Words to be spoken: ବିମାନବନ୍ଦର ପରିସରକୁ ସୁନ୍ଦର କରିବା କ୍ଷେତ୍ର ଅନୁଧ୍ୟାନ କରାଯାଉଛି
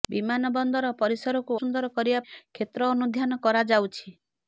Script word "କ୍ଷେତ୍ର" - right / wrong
right